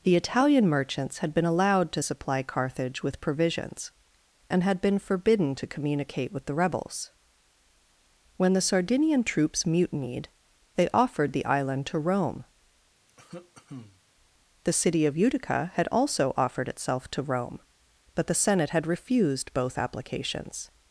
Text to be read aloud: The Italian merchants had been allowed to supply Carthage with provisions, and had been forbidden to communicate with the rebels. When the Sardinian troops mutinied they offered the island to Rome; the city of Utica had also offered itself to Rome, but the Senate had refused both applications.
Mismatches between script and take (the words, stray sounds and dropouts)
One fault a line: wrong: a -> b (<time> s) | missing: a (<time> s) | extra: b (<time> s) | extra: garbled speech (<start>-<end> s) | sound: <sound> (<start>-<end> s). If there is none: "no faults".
sound: cough (13.1-14.0 s)